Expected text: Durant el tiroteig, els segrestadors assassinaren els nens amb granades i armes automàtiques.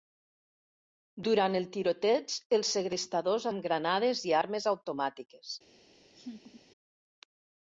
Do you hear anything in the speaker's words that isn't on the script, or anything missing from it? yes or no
yes